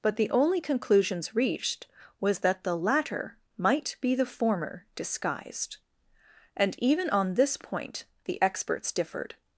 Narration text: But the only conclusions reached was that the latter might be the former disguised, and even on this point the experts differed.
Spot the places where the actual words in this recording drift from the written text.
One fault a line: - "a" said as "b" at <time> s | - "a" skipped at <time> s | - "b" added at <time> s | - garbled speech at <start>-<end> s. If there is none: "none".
none